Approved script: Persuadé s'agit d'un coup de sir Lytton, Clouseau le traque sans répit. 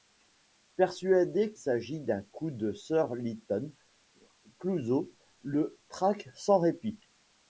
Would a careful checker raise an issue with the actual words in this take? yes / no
no